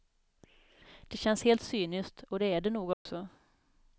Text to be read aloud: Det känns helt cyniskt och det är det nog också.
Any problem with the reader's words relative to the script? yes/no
no